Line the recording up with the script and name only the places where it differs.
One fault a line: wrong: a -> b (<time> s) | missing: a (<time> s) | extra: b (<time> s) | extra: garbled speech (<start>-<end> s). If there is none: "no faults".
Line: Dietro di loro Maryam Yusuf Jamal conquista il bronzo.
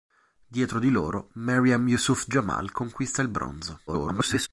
extra: garbled speech (3.9-4.5 s)